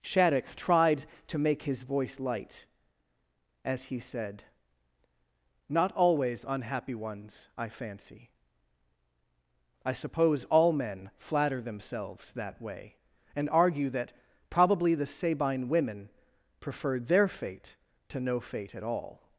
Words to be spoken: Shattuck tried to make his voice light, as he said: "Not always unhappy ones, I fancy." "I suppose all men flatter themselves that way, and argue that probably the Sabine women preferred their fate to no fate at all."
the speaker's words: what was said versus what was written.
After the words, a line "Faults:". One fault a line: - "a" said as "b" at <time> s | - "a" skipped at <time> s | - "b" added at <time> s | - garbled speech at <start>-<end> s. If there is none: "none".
Shattuck tried to make his voice light, as he said: "Not always unhappy ones, I fancy." "I suppose all men flatter themselves that way, and argue that probably the Sabine women preferred their fate to no fate at all."
Faults:
none